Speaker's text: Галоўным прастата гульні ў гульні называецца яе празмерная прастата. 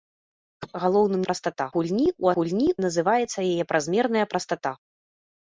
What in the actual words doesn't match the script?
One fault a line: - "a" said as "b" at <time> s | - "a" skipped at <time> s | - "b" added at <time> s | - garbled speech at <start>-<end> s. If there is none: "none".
none